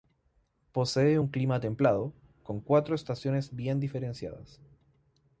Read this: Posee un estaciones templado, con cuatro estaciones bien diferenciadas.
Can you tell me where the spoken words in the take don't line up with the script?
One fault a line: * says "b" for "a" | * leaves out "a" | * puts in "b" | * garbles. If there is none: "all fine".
* says "clima" for "estaciones"